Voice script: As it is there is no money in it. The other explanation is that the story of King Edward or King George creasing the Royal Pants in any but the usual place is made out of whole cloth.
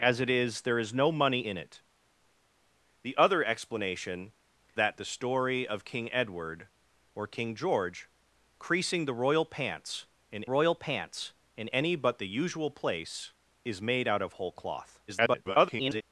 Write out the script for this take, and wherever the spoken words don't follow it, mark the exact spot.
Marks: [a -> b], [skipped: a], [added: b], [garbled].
As it is there is no money in it. The other explanation [skipped: is] that the story of King Edward or King George creasing the Royal Pants in [added: Royal Pants in] any but the usual place is made out of whole cloth. [garbled]